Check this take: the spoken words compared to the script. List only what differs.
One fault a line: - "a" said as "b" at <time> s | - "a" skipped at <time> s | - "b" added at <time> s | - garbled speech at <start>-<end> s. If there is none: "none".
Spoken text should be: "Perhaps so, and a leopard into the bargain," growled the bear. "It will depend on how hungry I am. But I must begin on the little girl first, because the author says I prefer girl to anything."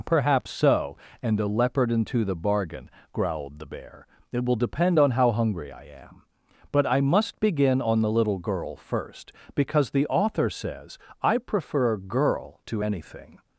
none